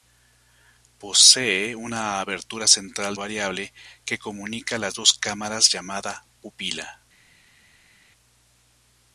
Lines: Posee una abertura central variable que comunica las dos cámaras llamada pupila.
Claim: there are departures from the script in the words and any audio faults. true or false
false